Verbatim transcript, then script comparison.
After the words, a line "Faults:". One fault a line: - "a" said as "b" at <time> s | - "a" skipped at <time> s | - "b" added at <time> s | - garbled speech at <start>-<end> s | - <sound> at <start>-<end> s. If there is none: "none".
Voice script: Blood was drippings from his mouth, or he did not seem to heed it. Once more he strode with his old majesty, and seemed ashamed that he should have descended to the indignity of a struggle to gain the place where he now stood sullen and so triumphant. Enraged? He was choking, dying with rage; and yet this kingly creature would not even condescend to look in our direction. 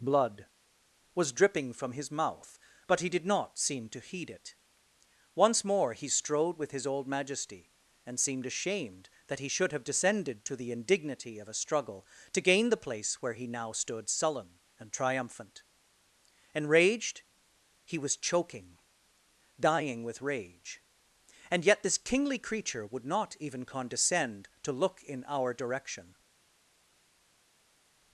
Blood was dripping from his mouth, but he did not seem to heed it. Once more he strode with his old majesty, and seemed ashamed that he should have descended to the indignity of a struggle to gain the place where he now stood sullen and triumphant. Enraged? He was choking, dying with rage; and yet this kingly creature would not even condescend to look in our direction.
Faults:
- "drippings" said as "dripping" at 1.3 s
- "or" said as "but" at 2.9 s
- "so" skipped at 14.9 s